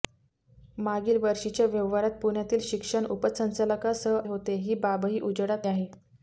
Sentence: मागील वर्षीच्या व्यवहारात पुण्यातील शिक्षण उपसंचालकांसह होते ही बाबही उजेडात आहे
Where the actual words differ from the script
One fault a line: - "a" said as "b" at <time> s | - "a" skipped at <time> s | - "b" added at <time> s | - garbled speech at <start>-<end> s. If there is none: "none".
none